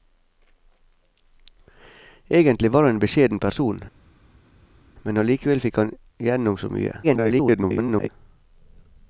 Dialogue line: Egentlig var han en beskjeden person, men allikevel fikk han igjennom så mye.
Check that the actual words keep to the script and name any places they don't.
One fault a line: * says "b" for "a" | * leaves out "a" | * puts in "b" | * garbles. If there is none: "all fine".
* garbles